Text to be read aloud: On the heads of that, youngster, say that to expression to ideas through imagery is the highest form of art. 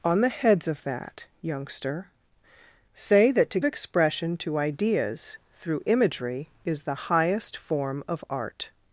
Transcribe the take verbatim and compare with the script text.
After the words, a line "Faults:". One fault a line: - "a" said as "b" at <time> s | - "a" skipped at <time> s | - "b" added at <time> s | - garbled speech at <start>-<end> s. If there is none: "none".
On the heads of that, youngster, say that to expression to ideas through imagery is the highest form of art.
Faults:
none